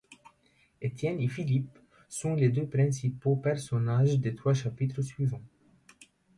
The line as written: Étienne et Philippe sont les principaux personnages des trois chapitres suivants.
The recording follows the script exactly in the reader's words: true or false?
false